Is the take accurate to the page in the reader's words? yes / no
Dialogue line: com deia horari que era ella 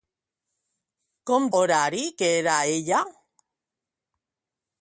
no